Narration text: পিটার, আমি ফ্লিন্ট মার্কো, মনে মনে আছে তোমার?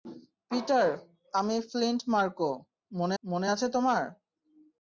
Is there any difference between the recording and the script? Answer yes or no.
no